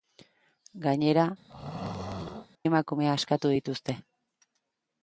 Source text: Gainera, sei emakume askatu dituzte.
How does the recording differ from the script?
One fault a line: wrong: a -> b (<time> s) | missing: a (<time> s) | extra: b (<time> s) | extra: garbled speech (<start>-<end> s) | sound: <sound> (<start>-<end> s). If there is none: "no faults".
missing: sei (1.2 s)
sound: throat clearing (1.5-2.5 s)